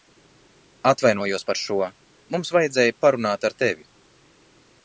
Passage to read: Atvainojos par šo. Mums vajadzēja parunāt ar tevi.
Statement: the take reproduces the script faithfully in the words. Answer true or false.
true